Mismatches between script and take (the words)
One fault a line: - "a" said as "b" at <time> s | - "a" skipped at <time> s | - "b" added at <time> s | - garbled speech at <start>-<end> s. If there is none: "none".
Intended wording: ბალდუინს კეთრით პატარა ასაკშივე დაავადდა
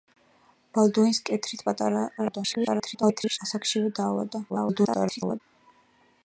- garbled speech at 2.2-3.4 s
- garbled speech at 4.5-5.4 s